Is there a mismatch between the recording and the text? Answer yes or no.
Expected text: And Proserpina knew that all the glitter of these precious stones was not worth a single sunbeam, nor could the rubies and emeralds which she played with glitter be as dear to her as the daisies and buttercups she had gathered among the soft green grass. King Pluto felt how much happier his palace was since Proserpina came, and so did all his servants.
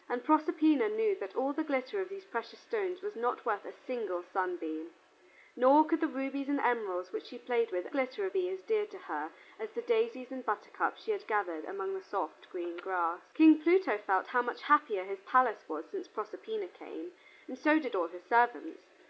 no